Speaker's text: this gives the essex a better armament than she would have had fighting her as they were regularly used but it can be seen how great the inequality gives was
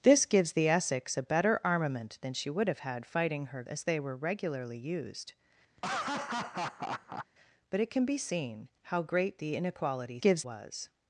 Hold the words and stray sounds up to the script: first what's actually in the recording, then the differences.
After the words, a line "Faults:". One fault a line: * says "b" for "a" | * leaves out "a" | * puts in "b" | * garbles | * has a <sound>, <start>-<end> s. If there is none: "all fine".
this gives the essex a better armament than she would have had fighting her as they were regularly used but it can be seen how great the inequality gives was
Faults:
* has a laugh, 5.8-7.3 s